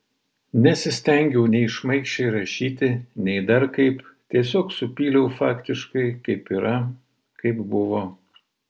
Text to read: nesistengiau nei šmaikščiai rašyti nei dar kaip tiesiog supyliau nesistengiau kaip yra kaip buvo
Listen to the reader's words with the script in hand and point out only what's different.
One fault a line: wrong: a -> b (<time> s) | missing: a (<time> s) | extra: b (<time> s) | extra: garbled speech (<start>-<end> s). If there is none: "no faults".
wrong: nesistengiau -> faktiškai (5.4 s)